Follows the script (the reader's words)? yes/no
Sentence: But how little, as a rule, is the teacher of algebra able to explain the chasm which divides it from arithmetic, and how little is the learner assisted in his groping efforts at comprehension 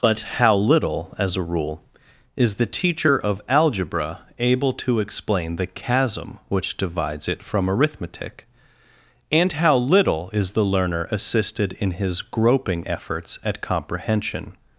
yes